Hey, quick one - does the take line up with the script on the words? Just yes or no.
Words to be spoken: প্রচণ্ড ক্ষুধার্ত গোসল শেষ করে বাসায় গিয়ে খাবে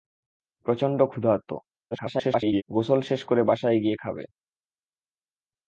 no